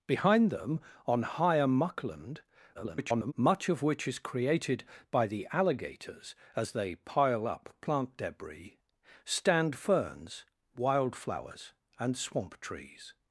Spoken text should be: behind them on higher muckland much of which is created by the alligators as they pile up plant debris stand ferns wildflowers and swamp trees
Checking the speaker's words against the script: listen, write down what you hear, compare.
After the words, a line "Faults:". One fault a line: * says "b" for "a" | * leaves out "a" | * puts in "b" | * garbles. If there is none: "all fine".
behind them on higher muckland [garbled] much of which is created by the alligators as they pile up plant debris stand ferns wildflowers and swamp trees
Faults:
* garbles